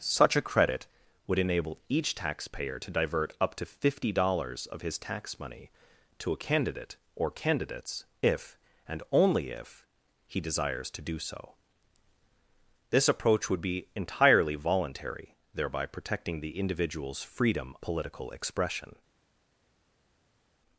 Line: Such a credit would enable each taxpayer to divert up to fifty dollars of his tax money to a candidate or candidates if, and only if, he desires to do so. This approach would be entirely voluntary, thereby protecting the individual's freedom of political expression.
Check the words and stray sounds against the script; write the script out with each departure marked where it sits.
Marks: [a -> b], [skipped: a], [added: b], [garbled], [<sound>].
Such a credit would enable each taxpayer to divert up to fifty dollars of his tax money to a candidate or candidates if, and only if, he desires to do so. This approach would be entirely voluntary, thereby protecting the individual's freedom [skipped: of] political expression.